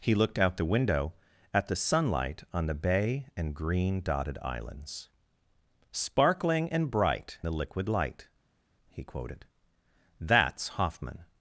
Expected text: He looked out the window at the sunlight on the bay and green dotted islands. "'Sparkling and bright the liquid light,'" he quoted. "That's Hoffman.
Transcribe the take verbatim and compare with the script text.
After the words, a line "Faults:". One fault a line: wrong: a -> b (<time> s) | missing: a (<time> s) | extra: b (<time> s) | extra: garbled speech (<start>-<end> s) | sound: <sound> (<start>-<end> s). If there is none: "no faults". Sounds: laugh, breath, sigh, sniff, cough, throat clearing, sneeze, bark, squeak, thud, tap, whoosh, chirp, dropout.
He looked out the window at the sunlight on the bay and green dotted islands. "'Sparkling and bright the liquid light,'" he quoted. "That's Hoffman.
Faults:
no faults